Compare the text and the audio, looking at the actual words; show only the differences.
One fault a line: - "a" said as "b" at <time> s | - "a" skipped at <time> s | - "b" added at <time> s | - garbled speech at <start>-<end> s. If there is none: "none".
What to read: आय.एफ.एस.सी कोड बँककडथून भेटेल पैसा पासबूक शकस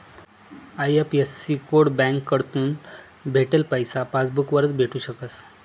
- "वरच भेटू" added at 4.5 s